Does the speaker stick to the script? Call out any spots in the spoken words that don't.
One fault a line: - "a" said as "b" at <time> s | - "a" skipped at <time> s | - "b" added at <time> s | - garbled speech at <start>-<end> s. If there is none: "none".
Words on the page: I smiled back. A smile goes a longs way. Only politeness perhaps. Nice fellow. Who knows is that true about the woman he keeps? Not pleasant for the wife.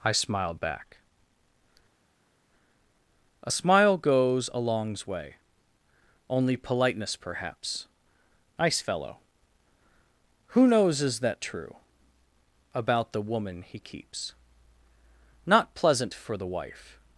none